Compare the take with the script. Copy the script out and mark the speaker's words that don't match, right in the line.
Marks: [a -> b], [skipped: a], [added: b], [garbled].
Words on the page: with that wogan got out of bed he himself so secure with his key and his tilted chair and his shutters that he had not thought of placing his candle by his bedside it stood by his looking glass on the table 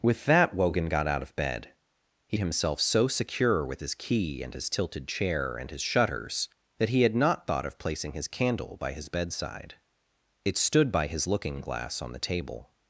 with that wogan got out of bed he himself so secure with his key and his tilted chair and his shutters that he had not thought of placing his candle by his bedside it stood by his looking glass on the table